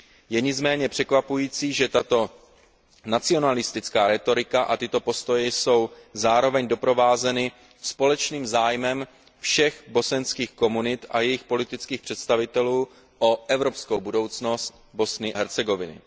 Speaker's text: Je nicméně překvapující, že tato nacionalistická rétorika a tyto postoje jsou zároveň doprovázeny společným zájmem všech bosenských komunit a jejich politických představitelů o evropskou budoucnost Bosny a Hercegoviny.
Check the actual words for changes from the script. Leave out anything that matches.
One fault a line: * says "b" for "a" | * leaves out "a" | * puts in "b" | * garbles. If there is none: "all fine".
* leaves out "a"